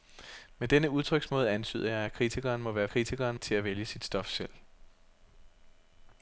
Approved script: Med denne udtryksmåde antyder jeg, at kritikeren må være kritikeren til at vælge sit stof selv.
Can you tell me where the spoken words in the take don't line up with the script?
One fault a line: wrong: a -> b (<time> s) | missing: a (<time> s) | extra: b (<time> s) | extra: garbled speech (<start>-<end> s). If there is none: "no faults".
no faults